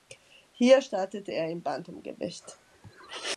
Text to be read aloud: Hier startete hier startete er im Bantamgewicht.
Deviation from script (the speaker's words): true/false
true